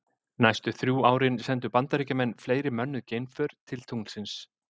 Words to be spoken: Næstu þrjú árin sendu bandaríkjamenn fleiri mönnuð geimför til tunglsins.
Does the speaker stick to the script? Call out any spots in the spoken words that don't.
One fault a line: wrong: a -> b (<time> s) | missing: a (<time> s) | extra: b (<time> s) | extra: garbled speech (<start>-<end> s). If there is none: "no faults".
no faults